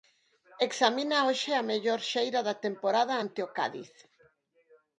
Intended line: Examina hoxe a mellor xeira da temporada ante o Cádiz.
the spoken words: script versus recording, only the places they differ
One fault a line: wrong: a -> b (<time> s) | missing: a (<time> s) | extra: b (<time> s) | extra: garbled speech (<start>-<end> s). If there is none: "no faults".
no faults